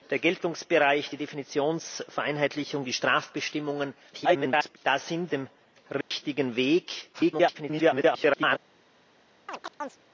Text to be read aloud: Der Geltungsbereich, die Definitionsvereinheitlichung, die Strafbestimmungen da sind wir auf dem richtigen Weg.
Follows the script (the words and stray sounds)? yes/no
no